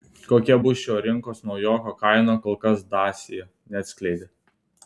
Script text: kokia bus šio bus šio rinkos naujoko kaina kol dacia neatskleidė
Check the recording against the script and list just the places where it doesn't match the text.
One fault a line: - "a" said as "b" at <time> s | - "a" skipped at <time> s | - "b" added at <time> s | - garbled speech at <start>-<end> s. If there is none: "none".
- "bus šio" skipped at 1.0 s
- "kas" added at 2.7 s